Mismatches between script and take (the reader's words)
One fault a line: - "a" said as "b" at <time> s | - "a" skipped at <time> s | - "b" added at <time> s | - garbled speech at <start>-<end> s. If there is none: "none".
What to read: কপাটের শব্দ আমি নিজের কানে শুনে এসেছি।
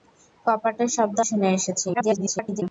- "আমি নিজের কানে" skipped at 1.2 s
- garbled speech at 1.9-2.6 s